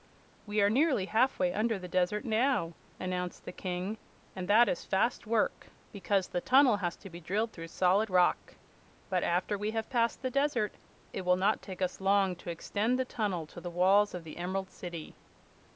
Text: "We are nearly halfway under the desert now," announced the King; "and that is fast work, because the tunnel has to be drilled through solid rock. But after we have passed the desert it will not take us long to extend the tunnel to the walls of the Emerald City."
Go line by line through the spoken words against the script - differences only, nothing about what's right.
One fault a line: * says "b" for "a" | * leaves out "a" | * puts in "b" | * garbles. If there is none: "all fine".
all fine